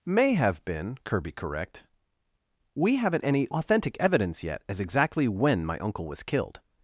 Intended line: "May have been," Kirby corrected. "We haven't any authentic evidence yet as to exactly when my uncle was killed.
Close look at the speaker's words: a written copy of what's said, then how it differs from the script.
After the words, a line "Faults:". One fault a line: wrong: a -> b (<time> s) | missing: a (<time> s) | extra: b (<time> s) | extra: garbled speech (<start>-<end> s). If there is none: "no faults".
"May have been," Kirby correct. "We haven't any authentic evidence yet as exactly when my uncle was killed.
Faults:
wrong: corrected -> correct (1.3 s)
missing: to (4.8 s)